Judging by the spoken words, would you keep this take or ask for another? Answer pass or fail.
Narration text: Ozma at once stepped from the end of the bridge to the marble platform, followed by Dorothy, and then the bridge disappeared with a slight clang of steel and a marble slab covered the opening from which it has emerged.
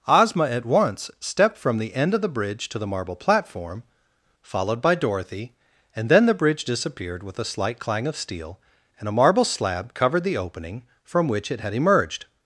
fail